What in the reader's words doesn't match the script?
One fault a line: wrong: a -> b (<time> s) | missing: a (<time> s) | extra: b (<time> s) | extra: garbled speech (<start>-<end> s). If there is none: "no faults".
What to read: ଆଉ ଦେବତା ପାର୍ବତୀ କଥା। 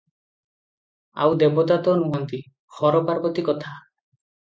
extra: ତ ନୁହନ୍ତି ହର (1.8 s)